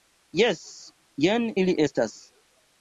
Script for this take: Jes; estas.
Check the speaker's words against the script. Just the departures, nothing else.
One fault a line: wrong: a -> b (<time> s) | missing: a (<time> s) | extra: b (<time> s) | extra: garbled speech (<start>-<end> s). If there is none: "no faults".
extra: jen ili (1.3 s)